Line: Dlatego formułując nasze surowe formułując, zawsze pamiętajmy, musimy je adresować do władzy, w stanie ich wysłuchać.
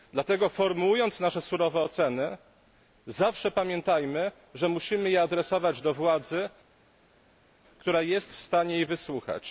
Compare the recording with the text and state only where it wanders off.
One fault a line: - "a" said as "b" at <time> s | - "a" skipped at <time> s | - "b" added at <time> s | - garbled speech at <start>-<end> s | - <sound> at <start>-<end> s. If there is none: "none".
- "formułując" said as "oceny" at 1.8 s
- "że" added at 4.5 s
- "która jest" added at 7.8 s